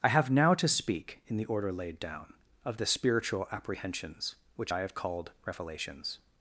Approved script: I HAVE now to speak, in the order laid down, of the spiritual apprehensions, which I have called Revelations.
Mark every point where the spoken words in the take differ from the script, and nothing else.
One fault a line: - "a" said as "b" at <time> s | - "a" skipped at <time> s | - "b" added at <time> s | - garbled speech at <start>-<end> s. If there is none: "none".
none